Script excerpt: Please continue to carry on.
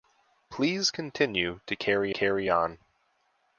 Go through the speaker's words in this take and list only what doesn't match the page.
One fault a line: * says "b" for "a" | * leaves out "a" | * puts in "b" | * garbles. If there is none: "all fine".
* puts in "carry"